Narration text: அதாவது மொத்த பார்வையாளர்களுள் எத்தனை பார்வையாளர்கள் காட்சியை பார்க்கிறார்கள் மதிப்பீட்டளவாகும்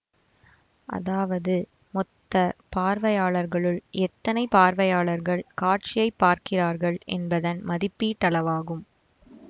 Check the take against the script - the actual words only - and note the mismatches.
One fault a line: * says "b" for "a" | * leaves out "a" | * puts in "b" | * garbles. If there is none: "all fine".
* puts in "என்பதன்"